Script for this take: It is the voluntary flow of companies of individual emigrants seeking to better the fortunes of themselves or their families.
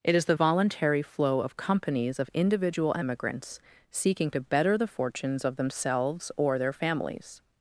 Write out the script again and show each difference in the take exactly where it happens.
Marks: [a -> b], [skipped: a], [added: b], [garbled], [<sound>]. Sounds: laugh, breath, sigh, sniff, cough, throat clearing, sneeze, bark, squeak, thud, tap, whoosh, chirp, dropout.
It is the voluntary flow of companies of individual emigrants seeking to better the fortunes of themselves or their families.